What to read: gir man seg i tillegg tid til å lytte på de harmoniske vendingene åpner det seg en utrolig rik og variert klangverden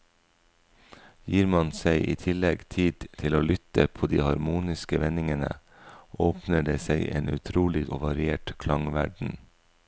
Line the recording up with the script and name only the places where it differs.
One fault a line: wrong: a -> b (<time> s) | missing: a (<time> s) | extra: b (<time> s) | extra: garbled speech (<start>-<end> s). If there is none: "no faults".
missing: rik (7.8 s)